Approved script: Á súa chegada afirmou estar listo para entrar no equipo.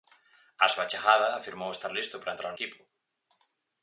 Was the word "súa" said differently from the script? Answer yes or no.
no